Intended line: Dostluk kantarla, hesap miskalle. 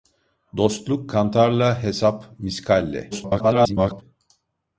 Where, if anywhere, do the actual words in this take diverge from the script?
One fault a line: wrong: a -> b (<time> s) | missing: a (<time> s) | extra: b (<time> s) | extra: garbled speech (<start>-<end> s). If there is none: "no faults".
extra: garbled speech (3.1-4.0 s)